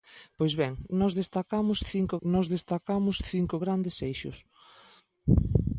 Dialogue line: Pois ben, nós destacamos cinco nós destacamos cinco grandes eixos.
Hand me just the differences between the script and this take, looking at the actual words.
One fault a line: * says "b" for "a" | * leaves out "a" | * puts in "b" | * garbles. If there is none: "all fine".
all fine